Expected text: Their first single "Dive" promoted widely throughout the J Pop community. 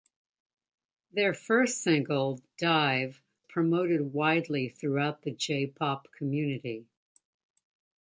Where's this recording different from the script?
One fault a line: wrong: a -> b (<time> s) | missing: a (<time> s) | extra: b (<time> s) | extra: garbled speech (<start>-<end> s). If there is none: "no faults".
no faults